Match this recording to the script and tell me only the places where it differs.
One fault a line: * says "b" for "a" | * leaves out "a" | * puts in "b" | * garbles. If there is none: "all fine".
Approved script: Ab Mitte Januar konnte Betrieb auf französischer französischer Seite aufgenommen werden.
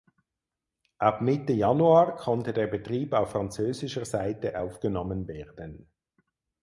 * puts in "der"
* leaves out "französischer"